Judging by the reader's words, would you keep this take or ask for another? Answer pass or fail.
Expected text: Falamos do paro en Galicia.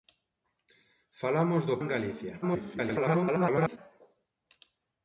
fail